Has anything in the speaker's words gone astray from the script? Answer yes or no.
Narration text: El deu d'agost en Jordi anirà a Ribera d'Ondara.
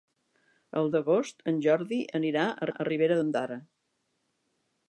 yes